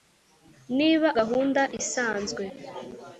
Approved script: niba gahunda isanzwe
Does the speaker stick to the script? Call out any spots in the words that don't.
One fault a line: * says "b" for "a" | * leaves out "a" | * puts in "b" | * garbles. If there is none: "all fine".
all fine